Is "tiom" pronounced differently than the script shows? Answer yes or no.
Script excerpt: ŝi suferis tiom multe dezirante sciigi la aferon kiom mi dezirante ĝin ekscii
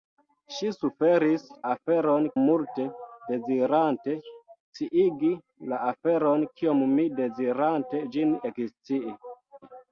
yes